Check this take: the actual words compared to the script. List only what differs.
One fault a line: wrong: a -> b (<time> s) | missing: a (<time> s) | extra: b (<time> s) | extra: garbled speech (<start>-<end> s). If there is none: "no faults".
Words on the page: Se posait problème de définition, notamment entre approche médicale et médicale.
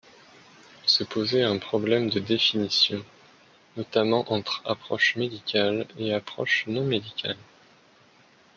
extra: un (1.4 s)
extra: approche non (6.1 s)